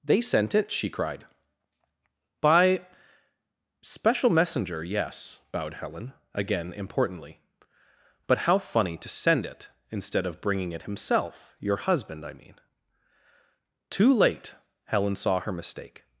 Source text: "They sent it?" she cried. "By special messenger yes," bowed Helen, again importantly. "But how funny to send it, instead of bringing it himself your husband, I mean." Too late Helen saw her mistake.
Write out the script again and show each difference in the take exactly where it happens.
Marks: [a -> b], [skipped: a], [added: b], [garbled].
"They sent it?" she cried. "By special messenger yes," bowed Helen, again importantly. "But how funny to send it, instead of bringing it himself your husband, I mean." Too late Helen saw her mistake.